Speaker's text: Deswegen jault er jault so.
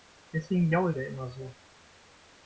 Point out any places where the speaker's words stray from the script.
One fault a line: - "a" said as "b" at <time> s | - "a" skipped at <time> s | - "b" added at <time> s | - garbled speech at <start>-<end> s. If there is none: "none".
- "jault" said as "immer" at 1.1 s